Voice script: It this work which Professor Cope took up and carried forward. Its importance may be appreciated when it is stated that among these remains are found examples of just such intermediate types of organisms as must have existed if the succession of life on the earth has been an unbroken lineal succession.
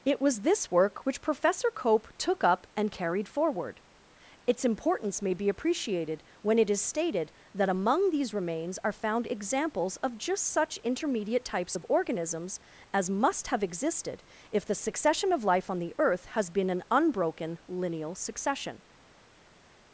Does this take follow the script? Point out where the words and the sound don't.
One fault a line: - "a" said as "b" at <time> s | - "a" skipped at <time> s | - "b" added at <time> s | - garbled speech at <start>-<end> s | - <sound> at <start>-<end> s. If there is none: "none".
- "was" added at 0.2 s